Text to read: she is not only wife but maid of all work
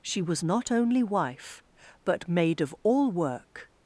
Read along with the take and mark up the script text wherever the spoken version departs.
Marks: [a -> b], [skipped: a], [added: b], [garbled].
she [is -> was] not only wife but maid of all work